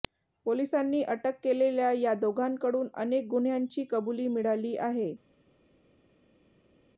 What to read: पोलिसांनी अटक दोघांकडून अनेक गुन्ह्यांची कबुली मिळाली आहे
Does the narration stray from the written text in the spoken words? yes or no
yes